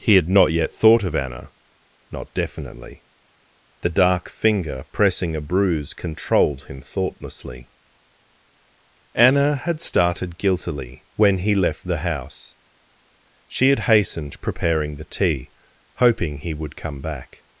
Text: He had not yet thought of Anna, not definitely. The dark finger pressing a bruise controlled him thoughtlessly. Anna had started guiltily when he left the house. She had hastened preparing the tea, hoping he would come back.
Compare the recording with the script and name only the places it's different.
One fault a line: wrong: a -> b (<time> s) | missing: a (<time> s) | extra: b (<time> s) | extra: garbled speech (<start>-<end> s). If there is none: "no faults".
no faults